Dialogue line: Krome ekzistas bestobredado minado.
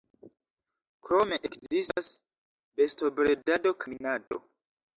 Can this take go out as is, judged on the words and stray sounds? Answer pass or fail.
fail